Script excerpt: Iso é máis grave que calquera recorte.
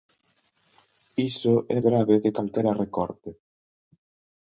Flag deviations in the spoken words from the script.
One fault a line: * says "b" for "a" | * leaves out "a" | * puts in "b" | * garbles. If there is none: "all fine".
* leaves out "máis"